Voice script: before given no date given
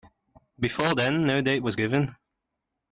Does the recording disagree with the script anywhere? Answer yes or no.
yes